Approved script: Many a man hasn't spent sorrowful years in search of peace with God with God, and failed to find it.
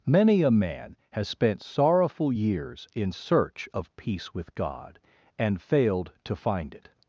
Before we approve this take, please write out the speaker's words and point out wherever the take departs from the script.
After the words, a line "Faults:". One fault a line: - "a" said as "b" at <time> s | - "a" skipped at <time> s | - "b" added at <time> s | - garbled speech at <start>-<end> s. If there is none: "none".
Many a man has spent sorrowful years in search of peace with God, and failed to find it.
Faults:
- "hasn't" said as "has" at 1.1 s
- "with God" skipped at 5.0 s